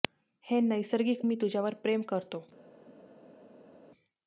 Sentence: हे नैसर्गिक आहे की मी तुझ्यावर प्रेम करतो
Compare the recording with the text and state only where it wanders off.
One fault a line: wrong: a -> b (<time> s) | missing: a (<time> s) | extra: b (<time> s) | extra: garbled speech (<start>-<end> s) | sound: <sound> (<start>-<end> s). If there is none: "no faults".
missing: आहे की (1.2 s)